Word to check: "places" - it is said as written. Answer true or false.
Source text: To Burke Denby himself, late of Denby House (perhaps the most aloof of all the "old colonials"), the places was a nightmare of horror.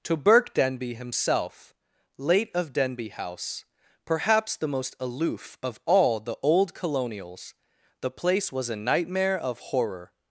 false